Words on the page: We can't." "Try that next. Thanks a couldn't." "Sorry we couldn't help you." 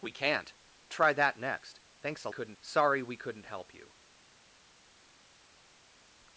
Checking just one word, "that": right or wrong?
right